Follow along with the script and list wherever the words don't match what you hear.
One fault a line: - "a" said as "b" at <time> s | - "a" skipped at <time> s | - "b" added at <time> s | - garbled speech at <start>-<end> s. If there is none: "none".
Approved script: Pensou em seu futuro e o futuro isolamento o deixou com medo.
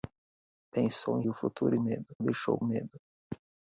- "seu futuro e" skipped at 1.2 s
- "isolamento" said as "medo" at 1.8 s
- "com" skipped at 2.6 s